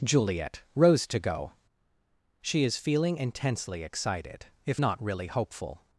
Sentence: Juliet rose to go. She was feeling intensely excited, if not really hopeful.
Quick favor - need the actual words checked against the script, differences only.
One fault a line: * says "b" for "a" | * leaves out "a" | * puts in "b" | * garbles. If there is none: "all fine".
* says "is" for "was"